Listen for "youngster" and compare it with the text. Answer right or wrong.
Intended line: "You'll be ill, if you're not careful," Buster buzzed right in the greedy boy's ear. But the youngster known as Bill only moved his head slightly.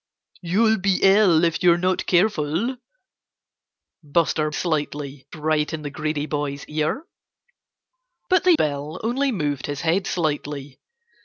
wrong